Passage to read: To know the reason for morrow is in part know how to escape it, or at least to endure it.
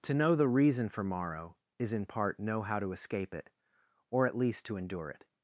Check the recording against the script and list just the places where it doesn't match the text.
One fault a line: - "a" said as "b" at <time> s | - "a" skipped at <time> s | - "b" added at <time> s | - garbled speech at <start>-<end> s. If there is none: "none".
none